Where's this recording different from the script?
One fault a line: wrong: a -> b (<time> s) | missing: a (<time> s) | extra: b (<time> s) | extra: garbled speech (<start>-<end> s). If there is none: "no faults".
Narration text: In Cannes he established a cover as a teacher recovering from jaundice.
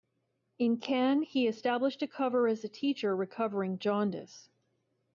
missing: from (3.8 s)